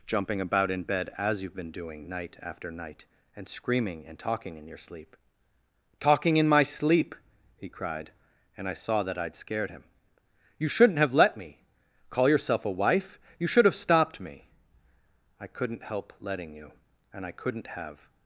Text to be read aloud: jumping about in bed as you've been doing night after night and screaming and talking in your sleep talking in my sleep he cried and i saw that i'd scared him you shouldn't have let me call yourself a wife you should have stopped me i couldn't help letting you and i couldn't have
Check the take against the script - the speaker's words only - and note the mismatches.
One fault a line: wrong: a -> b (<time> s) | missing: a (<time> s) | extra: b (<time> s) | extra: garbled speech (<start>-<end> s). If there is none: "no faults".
no faults